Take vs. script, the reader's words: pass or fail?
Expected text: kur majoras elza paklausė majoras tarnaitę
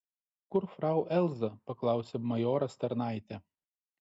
fail